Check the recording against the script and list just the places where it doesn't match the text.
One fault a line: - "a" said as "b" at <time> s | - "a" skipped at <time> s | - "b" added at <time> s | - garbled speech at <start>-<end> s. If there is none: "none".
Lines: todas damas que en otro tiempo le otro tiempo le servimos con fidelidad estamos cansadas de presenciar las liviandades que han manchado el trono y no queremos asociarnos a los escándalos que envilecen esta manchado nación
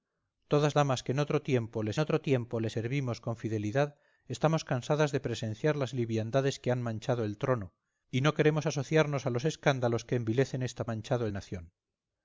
none